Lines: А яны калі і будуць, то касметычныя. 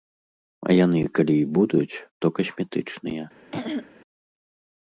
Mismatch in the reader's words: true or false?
false